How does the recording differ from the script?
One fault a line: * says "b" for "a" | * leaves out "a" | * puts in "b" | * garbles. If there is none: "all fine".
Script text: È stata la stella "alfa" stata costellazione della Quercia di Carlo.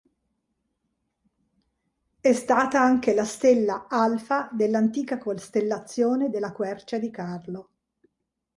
* puts in "anche"
* says "dell'antica" for "stata"